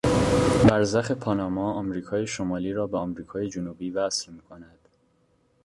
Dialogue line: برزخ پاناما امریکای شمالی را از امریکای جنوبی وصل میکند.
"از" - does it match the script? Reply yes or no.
no